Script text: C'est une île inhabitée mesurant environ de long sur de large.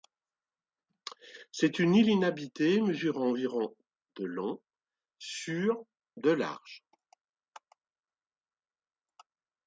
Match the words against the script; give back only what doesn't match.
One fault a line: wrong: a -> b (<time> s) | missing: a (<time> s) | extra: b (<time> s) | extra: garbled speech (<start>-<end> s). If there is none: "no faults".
no faults